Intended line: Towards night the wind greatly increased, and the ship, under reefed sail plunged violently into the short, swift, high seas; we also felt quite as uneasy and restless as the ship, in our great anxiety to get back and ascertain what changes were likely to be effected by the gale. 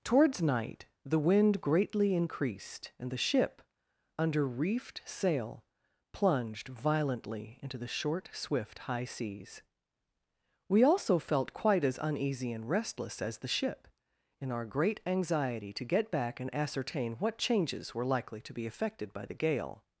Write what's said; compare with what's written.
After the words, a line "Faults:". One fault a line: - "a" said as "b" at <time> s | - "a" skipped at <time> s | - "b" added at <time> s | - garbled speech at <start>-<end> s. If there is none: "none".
Towards night the wind greatly increased, and the ship, under reefed sail plunged violently into the short, swift, high seas; we also felt quite as uneasy and restless as the ship, in our great anxiety to get back and ascertain what changes were likely to be effected by the gale.
Faults:
none